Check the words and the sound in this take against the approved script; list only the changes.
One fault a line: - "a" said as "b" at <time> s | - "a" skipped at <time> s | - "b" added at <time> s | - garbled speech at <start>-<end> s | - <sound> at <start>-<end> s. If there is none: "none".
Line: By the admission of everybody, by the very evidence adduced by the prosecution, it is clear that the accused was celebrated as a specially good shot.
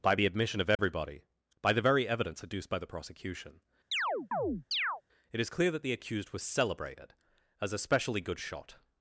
- dropout at 0.8-0.8 s
- chirp at 3.9-5.0 s